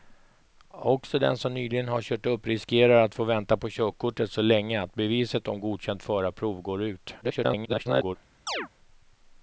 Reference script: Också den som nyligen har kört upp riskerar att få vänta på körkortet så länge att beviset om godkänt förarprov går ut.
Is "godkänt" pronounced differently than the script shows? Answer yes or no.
no